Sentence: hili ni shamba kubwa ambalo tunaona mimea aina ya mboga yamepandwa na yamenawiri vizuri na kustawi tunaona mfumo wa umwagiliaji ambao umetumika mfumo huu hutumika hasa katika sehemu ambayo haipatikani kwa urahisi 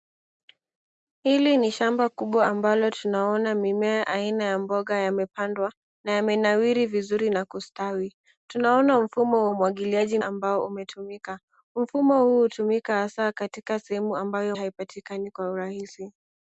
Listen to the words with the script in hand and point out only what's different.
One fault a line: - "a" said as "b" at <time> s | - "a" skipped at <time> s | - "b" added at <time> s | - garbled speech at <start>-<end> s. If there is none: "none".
none